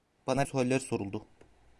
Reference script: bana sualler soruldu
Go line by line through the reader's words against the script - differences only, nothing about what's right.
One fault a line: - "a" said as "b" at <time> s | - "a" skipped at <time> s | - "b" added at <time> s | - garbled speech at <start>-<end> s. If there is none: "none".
none